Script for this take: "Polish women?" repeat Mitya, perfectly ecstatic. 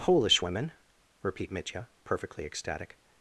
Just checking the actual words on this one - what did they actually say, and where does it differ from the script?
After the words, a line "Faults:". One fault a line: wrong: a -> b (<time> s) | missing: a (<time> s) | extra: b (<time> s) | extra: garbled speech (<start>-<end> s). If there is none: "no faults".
"Polish women?" repeat Mitya, perfectly ecstatic.
Faults:
no faults